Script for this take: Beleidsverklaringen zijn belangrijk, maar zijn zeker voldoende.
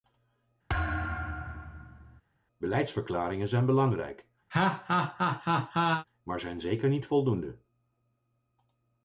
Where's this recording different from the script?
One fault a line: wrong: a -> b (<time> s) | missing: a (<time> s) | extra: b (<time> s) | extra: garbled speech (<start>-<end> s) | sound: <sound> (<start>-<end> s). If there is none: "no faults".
sound: thud (0.7-2.2 s)
sound: laugh (4.5-6.0 s)
extra: niet (6.9 s)